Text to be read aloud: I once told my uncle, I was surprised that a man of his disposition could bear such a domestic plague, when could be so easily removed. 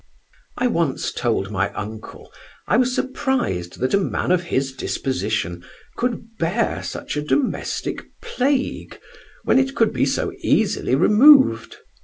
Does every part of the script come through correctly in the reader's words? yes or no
no